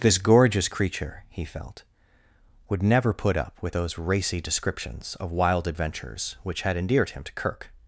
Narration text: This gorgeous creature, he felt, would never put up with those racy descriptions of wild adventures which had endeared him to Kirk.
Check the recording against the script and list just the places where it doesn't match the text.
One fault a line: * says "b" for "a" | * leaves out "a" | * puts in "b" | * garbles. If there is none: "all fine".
all fine